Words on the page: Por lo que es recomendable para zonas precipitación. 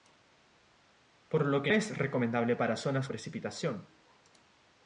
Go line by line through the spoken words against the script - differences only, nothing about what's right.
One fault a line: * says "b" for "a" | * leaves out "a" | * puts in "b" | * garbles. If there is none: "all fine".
all fine